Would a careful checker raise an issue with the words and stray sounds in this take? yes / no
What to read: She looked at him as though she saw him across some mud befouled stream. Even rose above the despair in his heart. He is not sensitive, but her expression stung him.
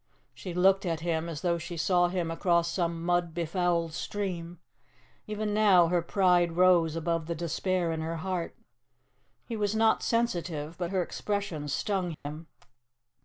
yes